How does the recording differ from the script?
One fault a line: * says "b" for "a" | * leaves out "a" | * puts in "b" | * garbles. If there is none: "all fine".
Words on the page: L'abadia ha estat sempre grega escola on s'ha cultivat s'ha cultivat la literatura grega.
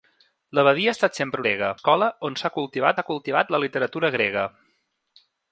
all fine